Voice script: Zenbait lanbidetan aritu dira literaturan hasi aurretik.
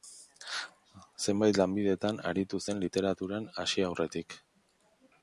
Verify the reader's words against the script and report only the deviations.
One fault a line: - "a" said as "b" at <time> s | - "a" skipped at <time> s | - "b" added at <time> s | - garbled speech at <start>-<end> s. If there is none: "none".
- "dira" said as "zen" at 2.7 s